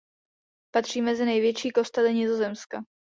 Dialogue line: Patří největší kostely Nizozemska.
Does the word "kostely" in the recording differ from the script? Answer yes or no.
no